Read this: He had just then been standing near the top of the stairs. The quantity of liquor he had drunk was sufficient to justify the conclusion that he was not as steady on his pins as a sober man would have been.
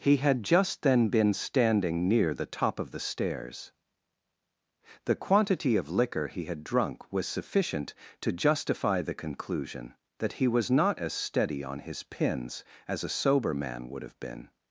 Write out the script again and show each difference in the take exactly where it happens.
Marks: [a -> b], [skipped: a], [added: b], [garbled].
He had just then been standing near the top of the stairs. The quantity of liquor he had drunk was sufficient to justify the conclusion that he was not as steady on his pins as a sober man would have been.